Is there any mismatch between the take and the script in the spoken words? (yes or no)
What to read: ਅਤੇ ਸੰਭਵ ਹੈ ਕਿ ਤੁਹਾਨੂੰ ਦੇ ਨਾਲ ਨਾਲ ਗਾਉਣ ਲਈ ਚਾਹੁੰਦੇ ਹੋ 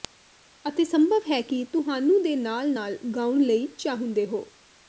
no